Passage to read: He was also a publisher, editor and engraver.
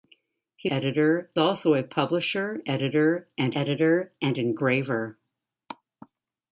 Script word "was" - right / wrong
wrong